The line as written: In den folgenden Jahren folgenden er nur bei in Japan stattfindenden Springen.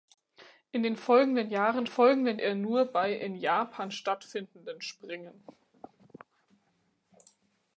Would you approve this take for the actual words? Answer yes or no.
yes